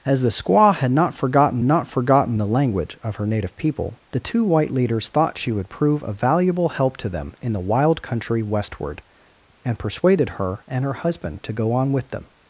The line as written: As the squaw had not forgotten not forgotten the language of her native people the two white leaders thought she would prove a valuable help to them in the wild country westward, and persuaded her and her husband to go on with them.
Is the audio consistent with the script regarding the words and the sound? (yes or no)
yes